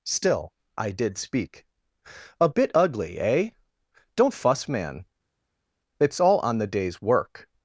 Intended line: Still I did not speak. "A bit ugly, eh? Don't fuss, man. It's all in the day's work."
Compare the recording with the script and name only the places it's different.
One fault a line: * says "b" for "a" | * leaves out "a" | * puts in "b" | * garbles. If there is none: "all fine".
* leaves out "not"
* says "on" for "in"